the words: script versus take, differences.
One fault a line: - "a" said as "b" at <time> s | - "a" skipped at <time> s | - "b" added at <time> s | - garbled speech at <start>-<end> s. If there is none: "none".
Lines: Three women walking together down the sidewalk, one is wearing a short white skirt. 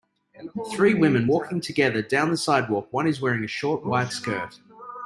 none